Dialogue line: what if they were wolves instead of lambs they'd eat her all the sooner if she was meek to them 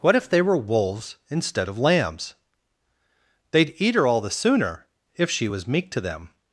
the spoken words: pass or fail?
pass